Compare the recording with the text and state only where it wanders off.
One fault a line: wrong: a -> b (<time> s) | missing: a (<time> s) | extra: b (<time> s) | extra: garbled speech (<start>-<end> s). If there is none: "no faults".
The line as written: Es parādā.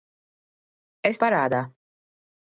no faults